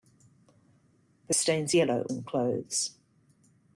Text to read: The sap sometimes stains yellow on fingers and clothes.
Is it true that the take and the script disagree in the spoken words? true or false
true